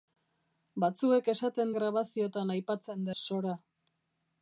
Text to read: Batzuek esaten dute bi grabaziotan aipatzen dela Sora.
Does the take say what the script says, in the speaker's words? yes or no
no